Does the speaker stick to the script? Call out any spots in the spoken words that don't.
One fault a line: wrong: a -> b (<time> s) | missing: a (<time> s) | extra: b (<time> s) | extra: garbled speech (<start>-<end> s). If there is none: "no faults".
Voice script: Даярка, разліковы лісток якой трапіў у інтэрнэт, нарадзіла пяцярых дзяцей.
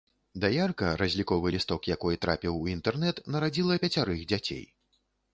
no faults